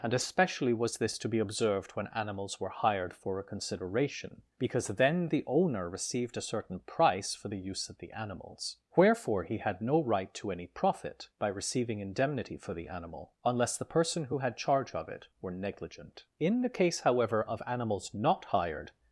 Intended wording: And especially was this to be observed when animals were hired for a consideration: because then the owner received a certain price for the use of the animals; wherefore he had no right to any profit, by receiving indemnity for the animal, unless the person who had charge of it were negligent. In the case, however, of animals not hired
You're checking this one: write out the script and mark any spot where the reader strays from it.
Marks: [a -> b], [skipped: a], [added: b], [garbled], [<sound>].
And especially was this to be observed when animals were hired for a consideration: because then the owner received a certain price for the use of the animals; wherefore he had no right to any profit, by receiving indemnity for the animal, unless the person who had charge of it were negligent. In the case, however, of animals not hired